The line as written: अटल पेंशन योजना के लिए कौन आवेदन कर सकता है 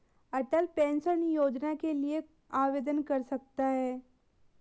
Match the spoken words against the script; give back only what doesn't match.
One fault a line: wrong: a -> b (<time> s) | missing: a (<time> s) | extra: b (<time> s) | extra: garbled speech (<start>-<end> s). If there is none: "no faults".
missing: कौन (2.2 s)